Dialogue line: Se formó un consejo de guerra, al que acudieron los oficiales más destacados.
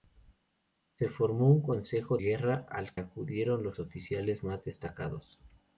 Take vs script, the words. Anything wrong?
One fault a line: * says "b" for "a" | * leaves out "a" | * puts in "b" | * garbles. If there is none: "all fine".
* leaves out "de"
* leaves out "que"